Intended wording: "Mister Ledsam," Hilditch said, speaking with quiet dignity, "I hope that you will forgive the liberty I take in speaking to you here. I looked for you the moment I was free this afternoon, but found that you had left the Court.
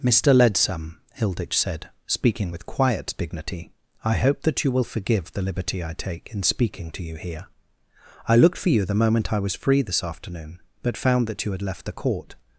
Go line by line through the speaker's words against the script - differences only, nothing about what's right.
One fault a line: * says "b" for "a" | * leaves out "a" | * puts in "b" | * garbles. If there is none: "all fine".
all fine